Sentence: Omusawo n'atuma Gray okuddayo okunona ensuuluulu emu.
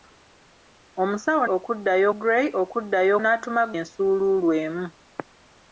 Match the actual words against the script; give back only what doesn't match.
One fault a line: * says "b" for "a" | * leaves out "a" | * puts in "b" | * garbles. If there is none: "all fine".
* says "okuddayo" for "n'atuma"
* says "n'atuma" for "okunona"